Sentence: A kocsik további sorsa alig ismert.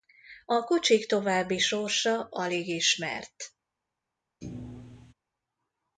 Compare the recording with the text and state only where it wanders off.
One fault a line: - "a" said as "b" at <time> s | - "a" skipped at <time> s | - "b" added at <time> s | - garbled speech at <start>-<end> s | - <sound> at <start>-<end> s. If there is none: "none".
- thud at 4.4-5.1 s